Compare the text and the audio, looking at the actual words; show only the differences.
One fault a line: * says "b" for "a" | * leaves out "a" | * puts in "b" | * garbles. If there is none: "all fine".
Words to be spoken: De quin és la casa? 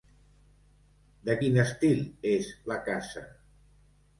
* puts in "estil"